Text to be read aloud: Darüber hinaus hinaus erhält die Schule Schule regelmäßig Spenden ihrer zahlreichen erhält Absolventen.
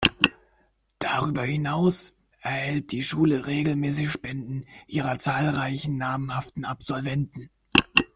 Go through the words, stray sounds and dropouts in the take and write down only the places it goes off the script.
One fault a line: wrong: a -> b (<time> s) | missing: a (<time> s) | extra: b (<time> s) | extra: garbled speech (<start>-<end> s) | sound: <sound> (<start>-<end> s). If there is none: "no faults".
missing: hinaus (2.1 s)
missing: Schule (3.5 s)
wrong: erhält -> namhaften (6.0 s)